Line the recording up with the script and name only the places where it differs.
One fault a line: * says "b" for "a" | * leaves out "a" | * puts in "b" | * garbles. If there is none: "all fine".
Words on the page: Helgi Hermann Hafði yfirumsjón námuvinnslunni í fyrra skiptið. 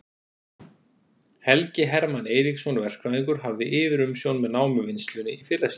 * puts in "Eiríksson verkfræðingur"
* puts in "með"